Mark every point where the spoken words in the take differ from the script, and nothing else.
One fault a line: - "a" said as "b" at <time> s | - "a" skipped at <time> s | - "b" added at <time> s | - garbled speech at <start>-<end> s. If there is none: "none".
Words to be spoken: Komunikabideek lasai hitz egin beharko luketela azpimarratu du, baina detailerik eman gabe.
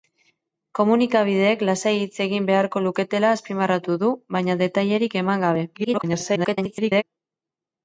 - garbled speech at 5.7-7.0 s